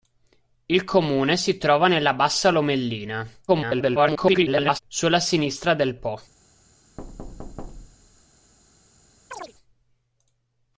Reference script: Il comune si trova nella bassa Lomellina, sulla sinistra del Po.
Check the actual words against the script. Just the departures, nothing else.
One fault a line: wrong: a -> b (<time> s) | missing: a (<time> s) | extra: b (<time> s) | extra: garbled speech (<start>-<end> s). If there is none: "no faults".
extra: garbled speech (3.5-4.8 s)